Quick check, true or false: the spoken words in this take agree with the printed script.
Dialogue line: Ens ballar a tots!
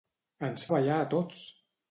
true